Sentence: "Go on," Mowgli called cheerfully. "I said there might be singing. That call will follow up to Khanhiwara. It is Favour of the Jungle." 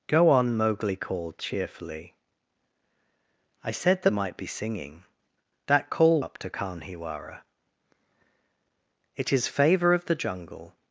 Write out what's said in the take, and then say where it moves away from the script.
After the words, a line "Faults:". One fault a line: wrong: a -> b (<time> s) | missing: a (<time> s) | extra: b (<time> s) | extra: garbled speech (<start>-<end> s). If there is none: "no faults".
"Go on," Mowgli called cheerfully. "I said there might be singing. That call up to Khanhiwara. It is Favour of the Jungle."
Faults:
missing: will follow (6.2 s)